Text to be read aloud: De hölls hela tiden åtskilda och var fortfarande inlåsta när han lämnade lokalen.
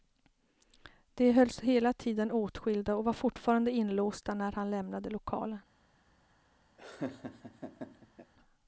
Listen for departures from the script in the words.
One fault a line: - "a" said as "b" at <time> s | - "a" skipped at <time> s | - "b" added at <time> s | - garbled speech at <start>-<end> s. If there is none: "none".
none